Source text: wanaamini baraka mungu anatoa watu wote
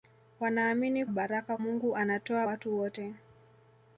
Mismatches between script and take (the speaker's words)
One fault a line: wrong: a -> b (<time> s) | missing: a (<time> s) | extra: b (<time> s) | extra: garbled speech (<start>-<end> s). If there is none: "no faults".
no faults